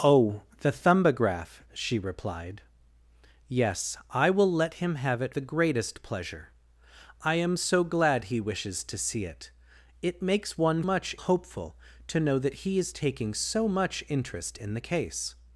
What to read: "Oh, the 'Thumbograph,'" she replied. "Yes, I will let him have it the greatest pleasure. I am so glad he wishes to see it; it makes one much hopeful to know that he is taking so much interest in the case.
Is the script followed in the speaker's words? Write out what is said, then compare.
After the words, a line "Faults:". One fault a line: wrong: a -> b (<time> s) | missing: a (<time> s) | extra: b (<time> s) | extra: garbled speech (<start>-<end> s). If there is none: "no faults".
"Oh, the 'Thumbograph,'" she replied. "Yes, I will let him have it the greatest pleasure. I am so glad he wishes to see it; it makes one much hopeful to know that he is taking so much interest in the case.
Faults:
no faults